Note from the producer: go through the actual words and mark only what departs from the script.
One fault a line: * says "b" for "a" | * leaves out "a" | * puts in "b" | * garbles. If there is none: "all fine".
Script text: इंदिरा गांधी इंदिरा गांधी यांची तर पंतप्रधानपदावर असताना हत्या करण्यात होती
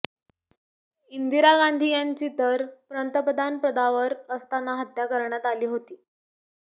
* leaves out "इंदिरा गांधी"
* puts in "आली"